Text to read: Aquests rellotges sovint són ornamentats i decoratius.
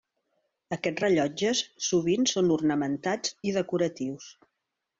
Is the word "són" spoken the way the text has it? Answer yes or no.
yes